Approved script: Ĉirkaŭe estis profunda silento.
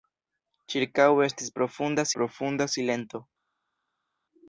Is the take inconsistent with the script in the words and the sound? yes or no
yes